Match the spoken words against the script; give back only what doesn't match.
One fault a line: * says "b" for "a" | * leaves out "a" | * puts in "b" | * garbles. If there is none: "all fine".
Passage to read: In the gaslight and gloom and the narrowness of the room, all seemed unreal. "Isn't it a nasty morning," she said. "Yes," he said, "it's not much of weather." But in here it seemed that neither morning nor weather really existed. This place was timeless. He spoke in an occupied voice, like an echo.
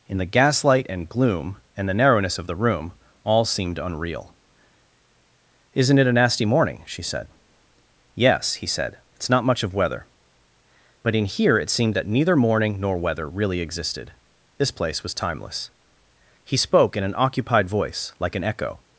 all fine